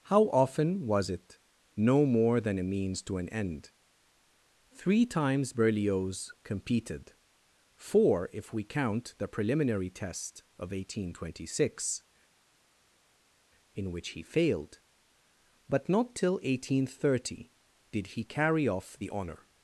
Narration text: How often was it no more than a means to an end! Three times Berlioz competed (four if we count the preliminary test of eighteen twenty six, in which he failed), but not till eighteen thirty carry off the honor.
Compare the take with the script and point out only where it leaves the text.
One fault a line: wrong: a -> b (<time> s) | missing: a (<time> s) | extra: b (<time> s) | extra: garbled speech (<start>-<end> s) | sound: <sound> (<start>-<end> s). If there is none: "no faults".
extra: did he (17.9 s)